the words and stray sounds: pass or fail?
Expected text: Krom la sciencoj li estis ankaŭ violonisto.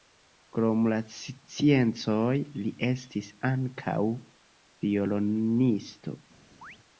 fail